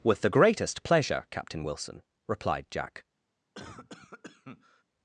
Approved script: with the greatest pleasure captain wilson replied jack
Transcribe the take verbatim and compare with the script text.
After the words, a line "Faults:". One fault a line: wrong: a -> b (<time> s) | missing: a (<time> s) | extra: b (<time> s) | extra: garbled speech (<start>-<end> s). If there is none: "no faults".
with the greatest pleasure captain wilson replied jack
Faults:
no faults